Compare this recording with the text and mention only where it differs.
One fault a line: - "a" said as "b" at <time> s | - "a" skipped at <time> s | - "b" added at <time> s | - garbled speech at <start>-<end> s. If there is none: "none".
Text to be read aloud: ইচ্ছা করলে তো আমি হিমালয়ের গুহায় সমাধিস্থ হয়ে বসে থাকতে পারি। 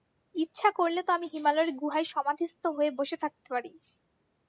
none